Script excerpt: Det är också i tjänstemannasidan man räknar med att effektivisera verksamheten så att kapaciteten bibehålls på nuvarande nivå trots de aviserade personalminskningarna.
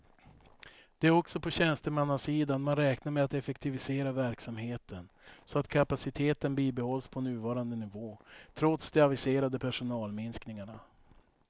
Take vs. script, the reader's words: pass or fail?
fail